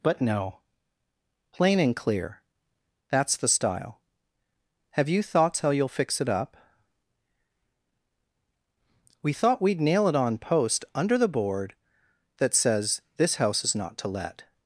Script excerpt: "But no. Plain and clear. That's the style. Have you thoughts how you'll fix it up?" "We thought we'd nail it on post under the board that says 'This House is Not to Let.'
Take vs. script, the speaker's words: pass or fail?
pass